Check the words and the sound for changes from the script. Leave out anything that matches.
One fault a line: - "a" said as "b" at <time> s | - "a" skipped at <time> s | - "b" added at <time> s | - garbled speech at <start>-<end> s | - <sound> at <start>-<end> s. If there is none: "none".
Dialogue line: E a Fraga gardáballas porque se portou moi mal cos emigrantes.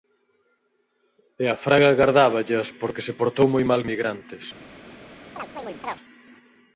- "cos" skipped at 3.8 s
- chirp at 5.4-6.0 s